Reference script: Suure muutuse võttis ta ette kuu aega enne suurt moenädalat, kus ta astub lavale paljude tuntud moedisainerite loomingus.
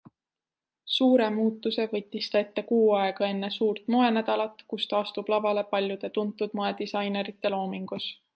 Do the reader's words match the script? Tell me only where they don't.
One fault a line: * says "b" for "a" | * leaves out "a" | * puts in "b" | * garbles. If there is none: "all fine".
all fine